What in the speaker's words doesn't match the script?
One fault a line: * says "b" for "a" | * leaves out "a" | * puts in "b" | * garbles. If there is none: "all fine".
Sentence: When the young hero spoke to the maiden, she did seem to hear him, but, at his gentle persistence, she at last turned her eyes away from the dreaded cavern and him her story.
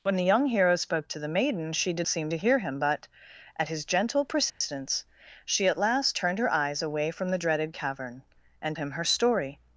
all fine